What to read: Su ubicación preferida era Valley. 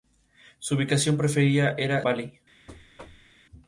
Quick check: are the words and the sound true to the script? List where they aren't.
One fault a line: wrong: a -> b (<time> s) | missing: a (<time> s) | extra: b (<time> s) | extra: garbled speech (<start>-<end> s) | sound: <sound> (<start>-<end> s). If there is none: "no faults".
sound: thud (2.7-3.4 s)